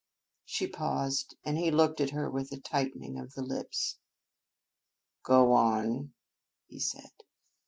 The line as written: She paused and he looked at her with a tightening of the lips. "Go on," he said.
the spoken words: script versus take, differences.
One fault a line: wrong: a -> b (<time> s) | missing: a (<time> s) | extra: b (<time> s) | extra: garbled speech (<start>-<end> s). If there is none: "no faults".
no faults